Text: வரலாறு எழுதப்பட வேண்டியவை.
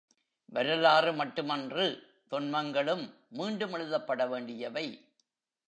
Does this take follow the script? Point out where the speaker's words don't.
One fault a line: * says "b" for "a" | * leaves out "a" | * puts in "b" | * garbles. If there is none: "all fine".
* puts in "மட்டுமன்று தொன்மங்களும் மீண்டும்"